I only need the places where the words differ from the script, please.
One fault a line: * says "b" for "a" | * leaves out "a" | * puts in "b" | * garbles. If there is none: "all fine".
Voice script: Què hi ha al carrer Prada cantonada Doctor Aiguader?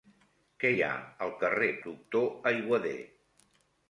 * leaves out "Prada cantonada"